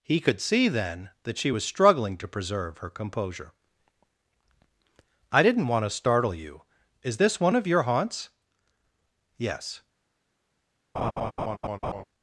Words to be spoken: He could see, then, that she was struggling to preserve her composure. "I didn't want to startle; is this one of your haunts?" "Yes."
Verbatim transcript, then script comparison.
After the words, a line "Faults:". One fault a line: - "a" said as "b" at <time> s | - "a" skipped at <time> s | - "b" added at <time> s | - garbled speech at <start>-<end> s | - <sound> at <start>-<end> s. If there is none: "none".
He could see, then, that she was struggling to preserve her composure. "I didn't want to startle you; is this one of your haunts?" "Yes."
Faults:
- "you" added at 6.3 s
- laugh at 10.9-12.0 s